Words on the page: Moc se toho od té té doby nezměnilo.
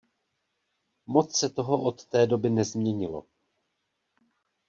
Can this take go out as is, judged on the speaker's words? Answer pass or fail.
fail